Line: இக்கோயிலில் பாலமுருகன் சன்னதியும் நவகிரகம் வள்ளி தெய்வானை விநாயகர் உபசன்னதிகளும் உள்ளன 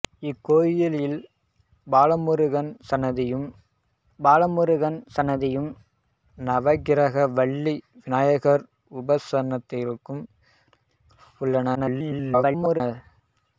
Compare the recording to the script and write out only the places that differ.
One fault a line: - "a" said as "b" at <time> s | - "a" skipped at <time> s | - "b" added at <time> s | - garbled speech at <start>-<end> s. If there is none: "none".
- "பாலமுருகன் சன்னதியும்" added at 4.2 s
- "தெய்வானை" skipped at 7.8 s
- garbled speech at 11.7-12.8 s